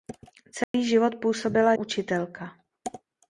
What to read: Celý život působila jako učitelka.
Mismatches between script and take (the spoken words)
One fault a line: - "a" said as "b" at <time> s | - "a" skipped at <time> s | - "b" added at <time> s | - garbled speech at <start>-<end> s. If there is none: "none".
- "jako" skipped at 1.7 s